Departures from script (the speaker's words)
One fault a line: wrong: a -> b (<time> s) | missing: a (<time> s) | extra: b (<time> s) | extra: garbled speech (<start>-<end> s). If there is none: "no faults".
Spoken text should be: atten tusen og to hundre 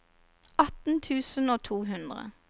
no faults